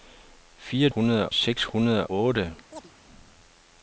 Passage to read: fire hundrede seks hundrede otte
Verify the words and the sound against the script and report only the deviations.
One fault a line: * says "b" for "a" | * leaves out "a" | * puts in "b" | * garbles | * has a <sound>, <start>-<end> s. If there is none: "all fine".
* has a chirp, 2.7-2.9 s